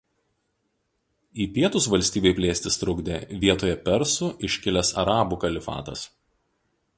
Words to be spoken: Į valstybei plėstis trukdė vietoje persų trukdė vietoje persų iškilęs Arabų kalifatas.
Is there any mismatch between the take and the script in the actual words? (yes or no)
yes